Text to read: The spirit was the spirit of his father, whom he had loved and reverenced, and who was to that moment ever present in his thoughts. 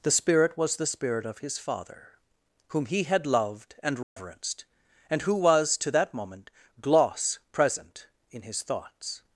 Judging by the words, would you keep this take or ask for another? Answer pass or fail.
fail